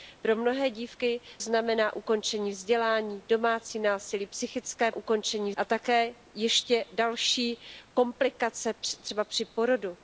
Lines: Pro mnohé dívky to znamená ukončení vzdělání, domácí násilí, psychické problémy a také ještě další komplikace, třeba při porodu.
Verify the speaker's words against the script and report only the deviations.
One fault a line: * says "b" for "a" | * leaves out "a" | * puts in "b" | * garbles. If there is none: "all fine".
* leaves out "to"
* says "ukončení" for "problémy"